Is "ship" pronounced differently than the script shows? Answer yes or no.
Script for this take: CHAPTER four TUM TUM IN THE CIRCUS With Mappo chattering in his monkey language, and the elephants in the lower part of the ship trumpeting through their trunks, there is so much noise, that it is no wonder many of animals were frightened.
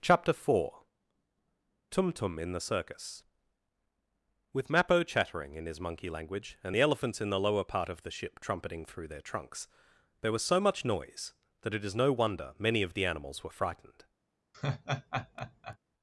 no